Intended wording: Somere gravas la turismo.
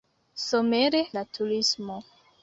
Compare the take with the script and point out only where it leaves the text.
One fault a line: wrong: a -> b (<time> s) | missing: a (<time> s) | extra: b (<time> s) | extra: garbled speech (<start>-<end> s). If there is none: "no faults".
missing: gravas (1.0 s)